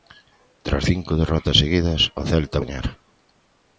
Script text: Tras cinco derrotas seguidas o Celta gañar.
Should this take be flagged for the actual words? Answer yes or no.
no